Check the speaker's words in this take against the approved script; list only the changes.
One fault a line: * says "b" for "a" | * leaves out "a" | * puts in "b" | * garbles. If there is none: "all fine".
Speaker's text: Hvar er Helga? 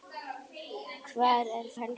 all fine